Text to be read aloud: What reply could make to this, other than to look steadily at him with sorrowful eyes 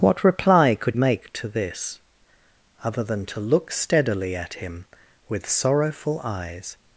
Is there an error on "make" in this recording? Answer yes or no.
no